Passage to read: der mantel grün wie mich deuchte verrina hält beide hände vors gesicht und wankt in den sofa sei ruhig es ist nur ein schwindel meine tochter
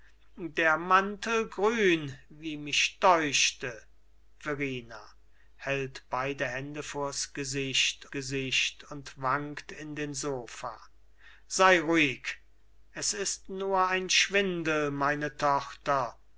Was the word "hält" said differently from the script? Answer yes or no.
no